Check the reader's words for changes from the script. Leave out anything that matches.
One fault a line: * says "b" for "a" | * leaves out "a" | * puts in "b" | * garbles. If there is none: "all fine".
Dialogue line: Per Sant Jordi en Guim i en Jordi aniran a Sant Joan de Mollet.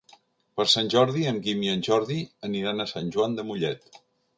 all fine